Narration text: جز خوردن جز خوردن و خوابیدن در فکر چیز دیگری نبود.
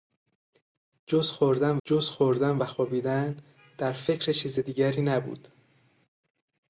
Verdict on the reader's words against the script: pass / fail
pass